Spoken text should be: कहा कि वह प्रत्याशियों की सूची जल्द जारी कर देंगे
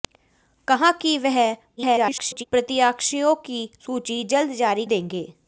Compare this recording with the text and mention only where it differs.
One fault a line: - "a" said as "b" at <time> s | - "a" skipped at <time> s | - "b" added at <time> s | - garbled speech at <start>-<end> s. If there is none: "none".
- garbled speech at 1.8-2.4 s
- "कर" skipped at 4.9 s